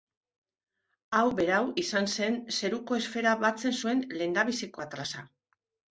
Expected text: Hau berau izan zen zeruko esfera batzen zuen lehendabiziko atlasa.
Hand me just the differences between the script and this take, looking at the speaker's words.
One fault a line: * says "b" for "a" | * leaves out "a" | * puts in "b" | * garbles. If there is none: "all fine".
all fine